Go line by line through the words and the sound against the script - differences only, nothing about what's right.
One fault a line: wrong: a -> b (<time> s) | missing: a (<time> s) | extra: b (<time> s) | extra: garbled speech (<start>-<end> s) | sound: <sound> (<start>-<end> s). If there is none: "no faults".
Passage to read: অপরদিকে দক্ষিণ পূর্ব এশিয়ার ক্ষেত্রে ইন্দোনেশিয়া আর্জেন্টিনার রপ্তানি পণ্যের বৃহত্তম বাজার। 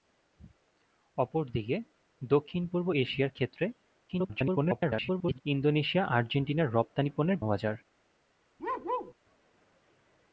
extra: garbled speech (4.1-5.4 s)
missing: বৃহত্তম (7.4 s)
sound: bark (8.6-9.1 s)